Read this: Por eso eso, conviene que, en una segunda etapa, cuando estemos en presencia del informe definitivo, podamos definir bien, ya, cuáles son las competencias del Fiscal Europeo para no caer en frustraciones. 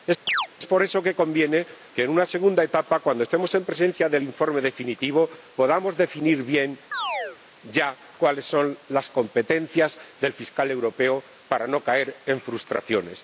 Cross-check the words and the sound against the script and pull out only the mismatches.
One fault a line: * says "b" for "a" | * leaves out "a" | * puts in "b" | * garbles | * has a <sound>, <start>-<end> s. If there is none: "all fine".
* has a chirp, 0.3-0.5 s
* leaves out "eso"
* has a chirp, 6.9-7.4 s